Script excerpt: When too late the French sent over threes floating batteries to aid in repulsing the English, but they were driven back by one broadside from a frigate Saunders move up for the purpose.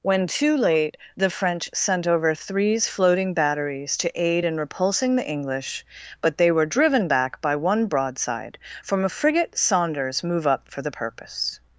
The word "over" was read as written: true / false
true